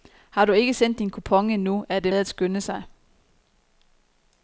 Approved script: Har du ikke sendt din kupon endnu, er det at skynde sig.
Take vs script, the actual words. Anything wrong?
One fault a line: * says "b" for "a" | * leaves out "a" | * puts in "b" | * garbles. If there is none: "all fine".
all fine